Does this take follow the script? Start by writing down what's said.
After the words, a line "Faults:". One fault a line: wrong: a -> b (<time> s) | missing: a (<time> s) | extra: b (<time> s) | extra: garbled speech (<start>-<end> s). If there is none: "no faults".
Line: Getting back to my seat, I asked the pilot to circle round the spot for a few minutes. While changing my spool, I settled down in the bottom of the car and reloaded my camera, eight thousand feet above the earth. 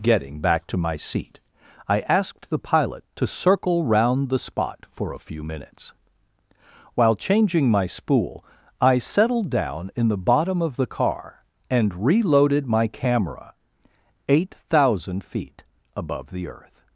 Getting back to my seat, I asked the pilot to circle round the spot for a few minutes. While changing my spool, I settled down in the bottom of the car and reloaded my camera, eight thousand feet above the earth.
Faults:
no faults